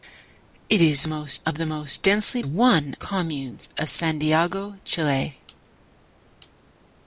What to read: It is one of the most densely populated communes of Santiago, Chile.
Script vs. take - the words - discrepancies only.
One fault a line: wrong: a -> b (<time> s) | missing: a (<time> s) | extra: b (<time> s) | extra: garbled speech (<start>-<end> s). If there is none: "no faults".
wrong: one -> most (1.0 s)
wrong: populated -> one (2.4 s)